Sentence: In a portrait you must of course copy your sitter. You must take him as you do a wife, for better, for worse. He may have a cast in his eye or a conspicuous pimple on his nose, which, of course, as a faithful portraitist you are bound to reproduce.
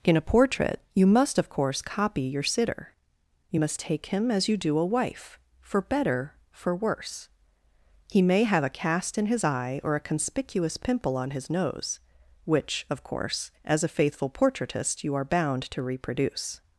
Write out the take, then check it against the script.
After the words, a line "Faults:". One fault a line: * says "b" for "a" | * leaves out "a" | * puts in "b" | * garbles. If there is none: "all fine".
In a portrait you must of course copy your sitter. You must take him as you do a wife, for better, for worse. He may have a cast in his eye or a conspicuous pimple on his nose, which, of course, as a faithful portraitist you are bound to reproduce.
Faults:
all fine